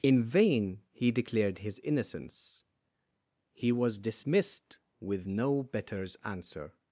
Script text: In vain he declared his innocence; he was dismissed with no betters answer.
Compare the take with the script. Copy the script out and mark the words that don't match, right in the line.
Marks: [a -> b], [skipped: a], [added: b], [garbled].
In vain he declared his innocence; he was dismissed with no betters answer.